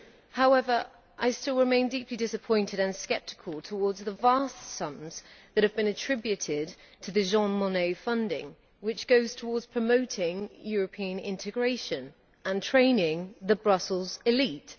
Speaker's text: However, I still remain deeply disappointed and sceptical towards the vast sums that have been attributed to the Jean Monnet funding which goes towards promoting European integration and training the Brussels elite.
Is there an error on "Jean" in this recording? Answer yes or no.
no